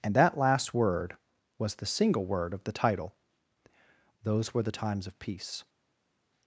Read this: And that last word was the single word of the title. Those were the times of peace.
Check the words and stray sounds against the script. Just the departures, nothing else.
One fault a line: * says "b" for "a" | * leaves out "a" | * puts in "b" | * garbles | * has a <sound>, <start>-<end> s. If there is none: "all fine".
all fine